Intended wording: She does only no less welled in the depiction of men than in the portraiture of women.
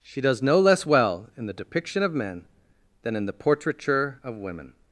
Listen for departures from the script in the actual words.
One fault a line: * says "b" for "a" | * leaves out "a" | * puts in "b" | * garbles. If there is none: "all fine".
* leaves out "only"
* says "well" for "welled"